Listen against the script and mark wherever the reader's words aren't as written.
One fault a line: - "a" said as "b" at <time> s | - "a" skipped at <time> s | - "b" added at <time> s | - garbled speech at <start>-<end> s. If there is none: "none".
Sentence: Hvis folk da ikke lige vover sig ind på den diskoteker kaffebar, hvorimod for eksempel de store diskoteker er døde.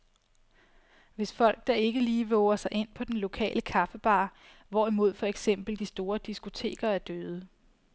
- "diskoteker" said as "lokale" at 3.2 s